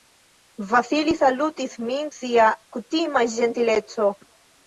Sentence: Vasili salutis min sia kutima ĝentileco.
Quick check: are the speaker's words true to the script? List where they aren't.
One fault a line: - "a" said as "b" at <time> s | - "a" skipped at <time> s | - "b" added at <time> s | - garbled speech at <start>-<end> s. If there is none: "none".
none